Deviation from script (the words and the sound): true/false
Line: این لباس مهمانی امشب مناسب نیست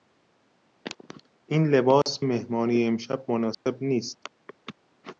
true